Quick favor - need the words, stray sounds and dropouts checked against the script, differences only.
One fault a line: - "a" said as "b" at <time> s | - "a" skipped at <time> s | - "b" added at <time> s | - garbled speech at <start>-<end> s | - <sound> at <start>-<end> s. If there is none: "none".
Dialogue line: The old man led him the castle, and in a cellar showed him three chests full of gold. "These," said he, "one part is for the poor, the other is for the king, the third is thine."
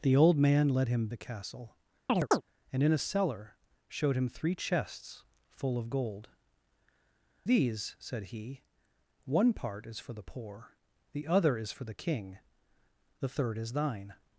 - chirp at 2.1-2.4 s